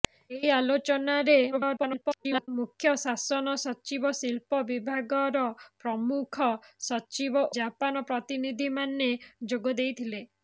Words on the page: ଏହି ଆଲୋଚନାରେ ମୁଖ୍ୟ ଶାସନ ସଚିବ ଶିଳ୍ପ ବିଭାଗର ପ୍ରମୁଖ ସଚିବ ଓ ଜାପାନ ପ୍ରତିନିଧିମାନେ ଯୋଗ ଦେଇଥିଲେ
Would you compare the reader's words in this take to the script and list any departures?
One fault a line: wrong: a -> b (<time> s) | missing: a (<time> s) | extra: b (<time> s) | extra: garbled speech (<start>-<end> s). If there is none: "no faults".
extra: garbled speech (1.5-2.5 s)
missing: ଓ (7.5 s)